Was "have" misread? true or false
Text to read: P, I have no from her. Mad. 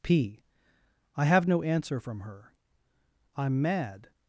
false